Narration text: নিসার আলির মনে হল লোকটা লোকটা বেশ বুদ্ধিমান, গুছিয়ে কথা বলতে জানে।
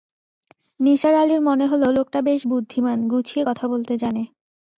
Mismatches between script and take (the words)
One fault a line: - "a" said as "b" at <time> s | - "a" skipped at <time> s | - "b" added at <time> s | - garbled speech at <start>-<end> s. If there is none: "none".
- "লোকটা" skipped at 2.2 s